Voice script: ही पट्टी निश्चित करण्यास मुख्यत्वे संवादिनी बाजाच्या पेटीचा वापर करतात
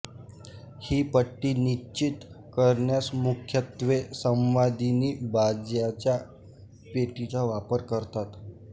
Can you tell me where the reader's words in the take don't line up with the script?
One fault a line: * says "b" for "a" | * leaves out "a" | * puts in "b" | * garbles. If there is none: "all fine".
all fine